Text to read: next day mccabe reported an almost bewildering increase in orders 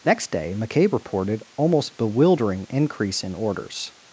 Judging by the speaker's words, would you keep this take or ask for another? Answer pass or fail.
fail